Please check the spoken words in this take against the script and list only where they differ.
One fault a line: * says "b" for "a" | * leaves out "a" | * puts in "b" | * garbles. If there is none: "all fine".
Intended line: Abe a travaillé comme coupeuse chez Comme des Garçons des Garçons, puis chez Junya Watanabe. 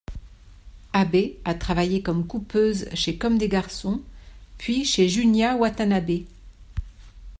* leaves out "des Garçons"